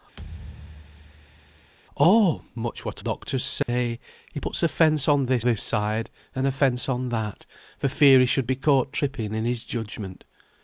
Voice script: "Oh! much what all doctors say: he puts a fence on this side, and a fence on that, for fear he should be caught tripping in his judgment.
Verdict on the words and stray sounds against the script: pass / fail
fail